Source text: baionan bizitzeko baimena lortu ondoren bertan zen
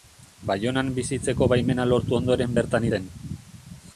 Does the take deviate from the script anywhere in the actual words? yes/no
no